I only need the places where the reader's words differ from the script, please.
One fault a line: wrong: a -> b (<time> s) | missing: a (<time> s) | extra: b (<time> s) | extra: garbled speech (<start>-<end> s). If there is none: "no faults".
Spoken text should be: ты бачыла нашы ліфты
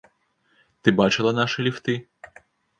no faults